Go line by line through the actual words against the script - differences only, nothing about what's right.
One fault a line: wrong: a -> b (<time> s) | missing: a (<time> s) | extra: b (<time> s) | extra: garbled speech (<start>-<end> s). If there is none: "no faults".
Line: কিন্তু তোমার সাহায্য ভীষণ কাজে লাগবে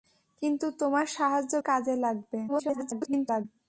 missing: ভীষণ (1.5 s)
extra: garbled speech (2.5-3.4 s)